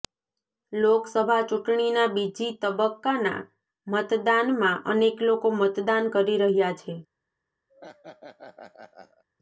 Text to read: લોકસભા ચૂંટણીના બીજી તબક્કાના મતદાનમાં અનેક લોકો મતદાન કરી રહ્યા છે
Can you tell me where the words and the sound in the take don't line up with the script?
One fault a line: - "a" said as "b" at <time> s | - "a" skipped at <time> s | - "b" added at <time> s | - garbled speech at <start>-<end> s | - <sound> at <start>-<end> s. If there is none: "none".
- laugh at 7.7-9.2 s